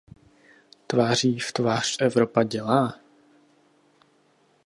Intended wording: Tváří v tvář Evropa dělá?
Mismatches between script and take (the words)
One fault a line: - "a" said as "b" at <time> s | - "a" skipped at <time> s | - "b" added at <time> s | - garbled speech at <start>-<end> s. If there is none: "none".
none